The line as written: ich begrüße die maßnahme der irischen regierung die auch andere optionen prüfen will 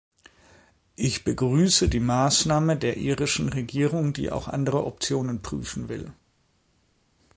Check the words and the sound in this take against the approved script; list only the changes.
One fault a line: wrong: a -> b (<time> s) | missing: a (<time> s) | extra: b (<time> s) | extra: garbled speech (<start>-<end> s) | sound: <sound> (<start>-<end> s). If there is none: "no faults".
no faults